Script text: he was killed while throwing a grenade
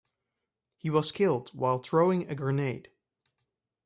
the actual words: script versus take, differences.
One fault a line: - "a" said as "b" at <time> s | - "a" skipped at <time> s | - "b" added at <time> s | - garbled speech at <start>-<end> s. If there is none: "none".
none